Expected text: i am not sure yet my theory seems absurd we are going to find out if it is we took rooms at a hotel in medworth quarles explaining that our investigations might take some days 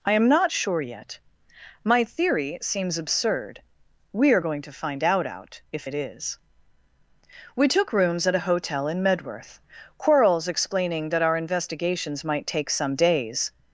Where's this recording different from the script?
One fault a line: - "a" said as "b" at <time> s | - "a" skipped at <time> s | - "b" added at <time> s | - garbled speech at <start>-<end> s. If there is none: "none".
- "out" added at 5.3 s